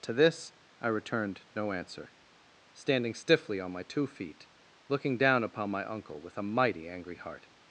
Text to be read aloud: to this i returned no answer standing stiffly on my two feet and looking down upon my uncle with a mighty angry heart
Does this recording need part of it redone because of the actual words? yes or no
yes